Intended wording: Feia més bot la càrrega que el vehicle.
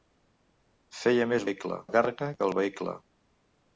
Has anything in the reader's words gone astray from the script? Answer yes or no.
yes